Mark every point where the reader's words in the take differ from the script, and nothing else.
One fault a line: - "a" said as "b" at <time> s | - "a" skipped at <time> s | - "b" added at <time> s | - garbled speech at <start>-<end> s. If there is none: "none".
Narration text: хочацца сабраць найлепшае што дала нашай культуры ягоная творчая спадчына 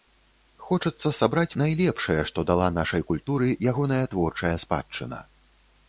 none